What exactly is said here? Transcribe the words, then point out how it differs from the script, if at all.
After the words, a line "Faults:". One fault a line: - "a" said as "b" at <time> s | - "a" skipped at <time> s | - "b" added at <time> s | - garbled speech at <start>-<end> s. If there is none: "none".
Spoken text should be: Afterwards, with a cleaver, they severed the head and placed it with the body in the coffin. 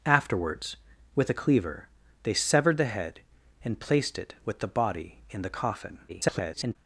Afterwards, with a cleaver, they severed the head and placed it with the body in the coffin. [garbled]
Faults:
- garbled speech at 6.1-6.8 s